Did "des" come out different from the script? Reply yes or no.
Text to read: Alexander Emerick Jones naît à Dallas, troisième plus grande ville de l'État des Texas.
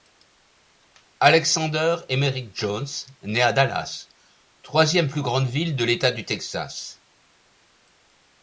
yes